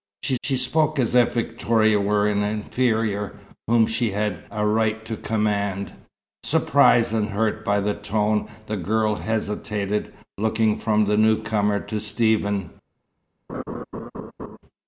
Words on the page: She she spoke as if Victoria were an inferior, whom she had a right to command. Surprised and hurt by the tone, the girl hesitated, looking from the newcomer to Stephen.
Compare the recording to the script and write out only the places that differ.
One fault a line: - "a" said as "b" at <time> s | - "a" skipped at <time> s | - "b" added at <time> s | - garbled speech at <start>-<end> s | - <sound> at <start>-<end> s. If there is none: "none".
- laugh at 13.5-14.6 s